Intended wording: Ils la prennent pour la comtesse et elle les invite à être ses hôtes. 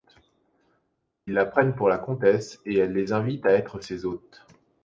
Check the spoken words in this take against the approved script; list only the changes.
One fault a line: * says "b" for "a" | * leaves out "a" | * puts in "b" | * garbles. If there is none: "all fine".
all fine